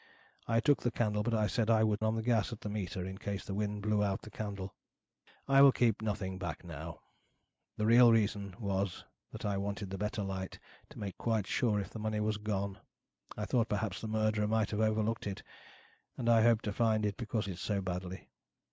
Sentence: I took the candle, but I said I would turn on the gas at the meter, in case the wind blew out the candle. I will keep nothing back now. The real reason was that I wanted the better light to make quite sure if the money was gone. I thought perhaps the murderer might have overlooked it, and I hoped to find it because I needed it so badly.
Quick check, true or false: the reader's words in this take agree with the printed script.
false